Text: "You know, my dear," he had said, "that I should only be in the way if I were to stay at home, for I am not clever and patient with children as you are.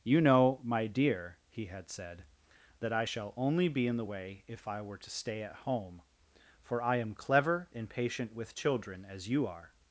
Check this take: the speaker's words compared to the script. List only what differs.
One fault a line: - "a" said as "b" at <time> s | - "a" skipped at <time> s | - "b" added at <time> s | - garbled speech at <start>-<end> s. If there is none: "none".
- "should" said as "shall" at 3.0 s
- "not" skipped at 7.1 s